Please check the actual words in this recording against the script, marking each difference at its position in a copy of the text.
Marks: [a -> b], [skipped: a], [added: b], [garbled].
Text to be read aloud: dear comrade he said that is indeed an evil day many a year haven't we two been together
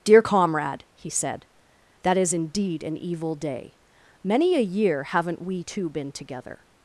dear comrade he said that is indeed an evil day many a year haven't we two been together